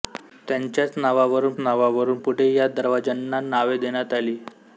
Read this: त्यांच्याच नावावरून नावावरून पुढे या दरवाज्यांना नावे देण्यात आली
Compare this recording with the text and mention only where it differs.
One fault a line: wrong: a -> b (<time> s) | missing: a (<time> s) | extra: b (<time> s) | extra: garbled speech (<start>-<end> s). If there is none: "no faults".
no faults